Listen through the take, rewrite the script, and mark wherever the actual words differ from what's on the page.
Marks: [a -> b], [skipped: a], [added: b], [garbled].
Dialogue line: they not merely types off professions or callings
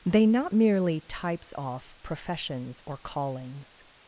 they not merely types off professions or callings